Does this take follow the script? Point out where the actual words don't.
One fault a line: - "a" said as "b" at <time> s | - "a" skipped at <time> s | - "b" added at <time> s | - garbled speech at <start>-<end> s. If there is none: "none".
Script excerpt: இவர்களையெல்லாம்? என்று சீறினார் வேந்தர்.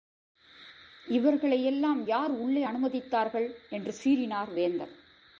- "யார் உள்ளே அனுமதித்தார்கள்" added at 2.1 s